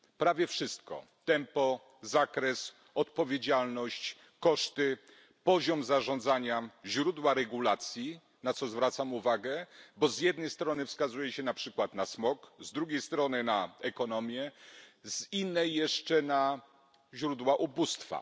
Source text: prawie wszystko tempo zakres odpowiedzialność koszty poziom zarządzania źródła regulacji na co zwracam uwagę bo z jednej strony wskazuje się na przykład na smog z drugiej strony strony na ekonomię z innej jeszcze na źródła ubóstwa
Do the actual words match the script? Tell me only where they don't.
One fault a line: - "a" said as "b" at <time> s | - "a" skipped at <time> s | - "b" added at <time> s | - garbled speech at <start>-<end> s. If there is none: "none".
- "strony" skipped at 13.4 s